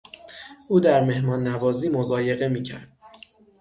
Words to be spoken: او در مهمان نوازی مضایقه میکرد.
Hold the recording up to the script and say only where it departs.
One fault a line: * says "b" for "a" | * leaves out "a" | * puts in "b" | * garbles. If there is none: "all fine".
all fine